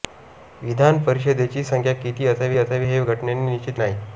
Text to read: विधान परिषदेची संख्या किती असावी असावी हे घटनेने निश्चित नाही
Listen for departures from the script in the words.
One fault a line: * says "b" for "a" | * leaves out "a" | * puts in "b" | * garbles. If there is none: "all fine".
all fine